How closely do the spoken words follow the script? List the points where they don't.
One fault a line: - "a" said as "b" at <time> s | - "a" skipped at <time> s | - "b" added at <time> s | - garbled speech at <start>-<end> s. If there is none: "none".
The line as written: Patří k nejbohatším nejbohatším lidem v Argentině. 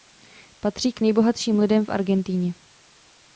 - "nejbohatším" skipped at 1.6 s